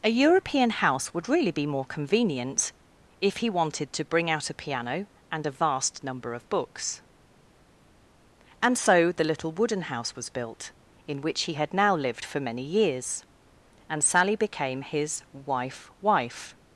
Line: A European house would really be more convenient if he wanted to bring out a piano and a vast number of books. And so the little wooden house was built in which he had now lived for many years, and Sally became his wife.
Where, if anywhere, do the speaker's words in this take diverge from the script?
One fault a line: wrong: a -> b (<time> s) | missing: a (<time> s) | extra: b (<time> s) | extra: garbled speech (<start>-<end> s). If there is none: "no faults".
extra: wife (16.0 s)